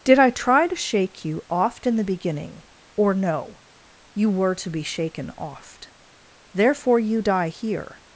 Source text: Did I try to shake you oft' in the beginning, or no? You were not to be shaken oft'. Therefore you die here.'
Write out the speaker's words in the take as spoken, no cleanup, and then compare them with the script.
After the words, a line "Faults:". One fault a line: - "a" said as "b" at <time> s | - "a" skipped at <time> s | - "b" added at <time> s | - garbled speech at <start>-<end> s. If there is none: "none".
Did I try to shake you oft' in the beginning, or no? You were to be shaken oft'. Therefore you die here.'
Faults:
- "not" skipped at 4.5 s